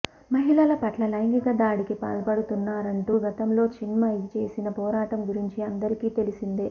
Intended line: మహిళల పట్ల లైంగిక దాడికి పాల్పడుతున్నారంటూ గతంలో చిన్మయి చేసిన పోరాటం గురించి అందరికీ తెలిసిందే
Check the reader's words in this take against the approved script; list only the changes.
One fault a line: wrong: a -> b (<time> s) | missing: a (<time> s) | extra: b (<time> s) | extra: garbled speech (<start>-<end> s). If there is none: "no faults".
no faults